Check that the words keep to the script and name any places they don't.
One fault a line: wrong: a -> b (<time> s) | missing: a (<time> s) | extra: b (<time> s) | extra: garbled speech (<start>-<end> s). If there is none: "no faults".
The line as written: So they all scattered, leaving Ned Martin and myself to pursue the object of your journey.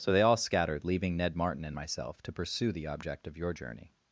no faults